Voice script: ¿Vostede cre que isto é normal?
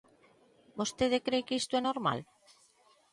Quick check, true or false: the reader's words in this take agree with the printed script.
true